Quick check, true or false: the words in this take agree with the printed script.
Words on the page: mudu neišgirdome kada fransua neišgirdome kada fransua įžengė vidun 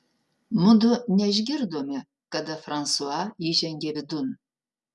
false